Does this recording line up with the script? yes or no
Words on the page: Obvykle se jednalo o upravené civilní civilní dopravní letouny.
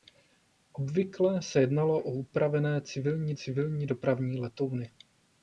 yes